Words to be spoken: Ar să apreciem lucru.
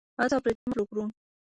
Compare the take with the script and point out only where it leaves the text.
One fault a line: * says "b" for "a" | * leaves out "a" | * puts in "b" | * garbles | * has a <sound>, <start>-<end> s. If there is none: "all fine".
* has a dropout, 0.6-0.7 s